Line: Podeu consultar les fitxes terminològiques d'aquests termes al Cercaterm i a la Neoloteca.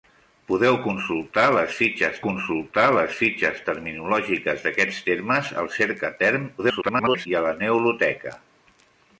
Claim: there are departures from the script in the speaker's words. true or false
true